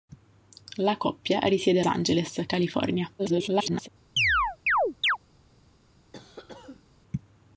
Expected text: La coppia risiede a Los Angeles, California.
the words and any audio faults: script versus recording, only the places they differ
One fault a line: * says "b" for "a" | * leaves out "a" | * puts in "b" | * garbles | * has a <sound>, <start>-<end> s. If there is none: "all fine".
* leaves out "Los"
* garbles
* has a chirp, 4.2-5.2 s
* has a cough, 6.1-6.9 s